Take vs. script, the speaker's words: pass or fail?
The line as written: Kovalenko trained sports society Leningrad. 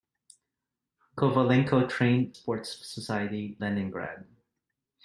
pass